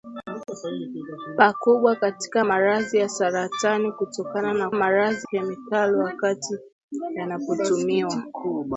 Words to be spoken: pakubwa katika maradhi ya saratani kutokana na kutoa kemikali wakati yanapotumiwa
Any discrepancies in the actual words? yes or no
yes